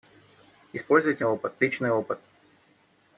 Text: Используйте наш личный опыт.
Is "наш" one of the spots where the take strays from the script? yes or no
yes